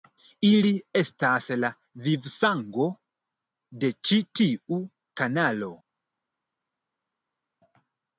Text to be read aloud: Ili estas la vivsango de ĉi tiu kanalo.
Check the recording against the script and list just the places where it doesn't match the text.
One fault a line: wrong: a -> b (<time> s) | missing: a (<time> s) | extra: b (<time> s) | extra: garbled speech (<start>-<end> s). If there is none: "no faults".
no faults